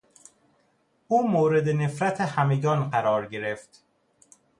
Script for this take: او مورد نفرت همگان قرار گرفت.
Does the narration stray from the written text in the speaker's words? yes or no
no